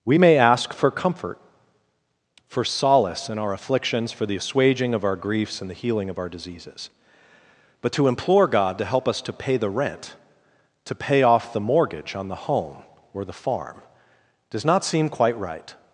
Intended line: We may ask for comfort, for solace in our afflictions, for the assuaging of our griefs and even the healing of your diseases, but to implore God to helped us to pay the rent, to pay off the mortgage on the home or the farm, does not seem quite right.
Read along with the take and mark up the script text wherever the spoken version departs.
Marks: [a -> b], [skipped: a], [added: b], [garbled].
We may ask for comfort, for solace in our afflictions, for the assuaging of our griefs and [skipped: even] the healing of [your -> our] diseases, but to implore God to [helped -> help] us to pay the rent, to pay off the mortgage on the home or the farm, does not seem quite right.